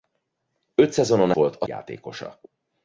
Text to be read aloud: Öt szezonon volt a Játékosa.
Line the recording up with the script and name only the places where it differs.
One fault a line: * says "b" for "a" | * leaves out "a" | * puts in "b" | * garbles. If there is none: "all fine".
all fine